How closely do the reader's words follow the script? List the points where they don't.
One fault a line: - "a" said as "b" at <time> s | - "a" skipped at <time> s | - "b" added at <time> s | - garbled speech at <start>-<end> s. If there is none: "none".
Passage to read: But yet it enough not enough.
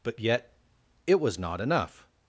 - "enough" said as "was" at 1.2 s